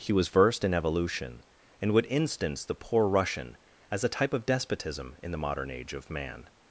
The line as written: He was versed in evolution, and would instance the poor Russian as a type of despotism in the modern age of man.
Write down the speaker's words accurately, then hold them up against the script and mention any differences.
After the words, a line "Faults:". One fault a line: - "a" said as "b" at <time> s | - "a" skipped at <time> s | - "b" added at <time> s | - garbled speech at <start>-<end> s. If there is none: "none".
He was versed in evolution, and would instance the poor Russian as a type of despotism in the modern age of man.
Faults:
none